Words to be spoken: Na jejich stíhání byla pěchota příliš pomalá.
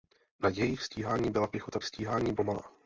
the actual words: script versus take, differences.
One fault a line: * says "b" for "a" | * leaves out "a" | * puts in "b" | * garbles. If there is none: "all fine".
* says "stíhání" for "příliš"